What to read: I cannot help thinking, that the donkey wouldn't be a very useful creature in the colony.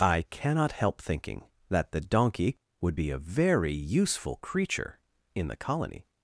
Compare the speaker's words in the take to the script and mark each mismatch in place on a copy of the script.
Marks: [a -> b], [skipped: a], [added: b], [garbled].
I cannot help thinking, that the donkey [wouldn't -> would] be a very useful creature in the colony.